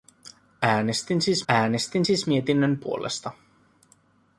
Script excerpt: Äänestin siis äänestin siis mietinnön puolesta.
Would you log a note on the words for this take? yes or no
no